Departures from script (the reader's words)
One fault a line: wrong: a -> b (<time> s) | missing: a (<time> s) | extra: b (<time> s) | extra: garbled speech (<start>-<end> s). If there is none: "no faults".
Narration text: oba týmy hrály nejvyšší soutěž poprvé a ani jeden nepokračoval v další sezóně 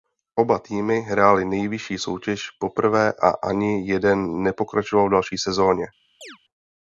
no faults